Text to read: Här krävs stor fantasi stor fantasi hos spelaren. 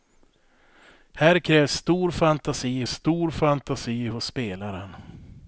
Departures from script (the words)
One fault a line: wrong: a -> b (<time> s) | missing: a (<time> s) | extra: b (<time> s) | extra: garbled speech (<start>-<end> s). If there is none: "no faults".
no faults